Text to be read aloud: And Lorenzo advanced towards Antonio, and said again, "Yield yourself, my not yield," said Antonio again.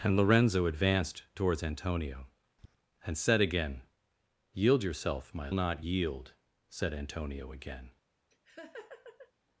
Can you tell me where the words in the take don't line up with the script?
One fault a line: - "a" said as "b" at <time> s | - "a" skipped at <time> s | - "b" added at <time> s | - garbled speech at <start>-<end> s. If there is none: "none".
none